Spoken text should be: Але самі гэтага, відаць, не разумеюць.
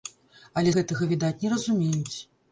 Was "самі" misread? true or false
true